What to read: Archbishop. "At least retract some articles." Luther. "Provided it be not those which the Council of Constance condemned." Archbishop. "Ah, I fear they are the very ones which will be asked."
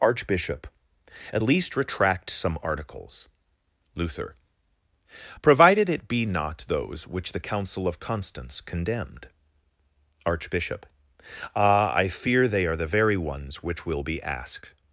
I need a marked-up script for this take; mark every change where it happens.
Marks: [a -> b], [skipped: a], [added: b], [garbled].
Archbishop. "At least retract some articles." Luther. "Provided it be not those which the Council of Constance condemned." Archbishop. "Ah, I fear they are the very ones which will be asked."